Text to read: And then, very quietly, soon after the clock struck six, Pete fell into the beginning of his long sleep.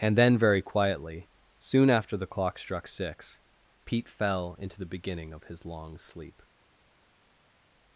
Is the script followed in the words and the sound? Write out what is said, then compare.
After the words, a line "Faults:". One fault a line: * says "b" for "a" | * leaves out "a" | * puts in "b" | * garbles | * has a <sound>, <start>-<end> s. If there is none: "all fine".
And then, very quietly, soon after the clock struck six, Pete fell into the beginning of his long sleep.
Faults:
all fine